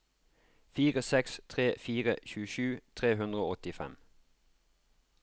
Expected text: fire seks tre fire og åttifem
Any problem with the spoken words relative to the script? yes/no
yes